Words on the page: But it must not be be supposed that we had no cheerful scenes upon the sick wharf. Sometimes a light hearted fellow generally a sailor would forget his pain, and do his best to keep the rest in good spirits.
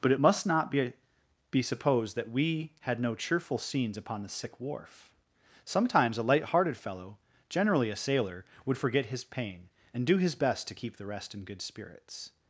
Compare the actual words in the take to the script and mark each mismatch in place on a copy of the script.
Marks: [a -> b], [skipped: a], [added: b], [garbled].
But it must not be be supposed that we had no cheerful scenes upon the sick wharf. Sometimes a light hearted fellow generally a sailor would forget his pain, and do his best to keep the rest in good spirits.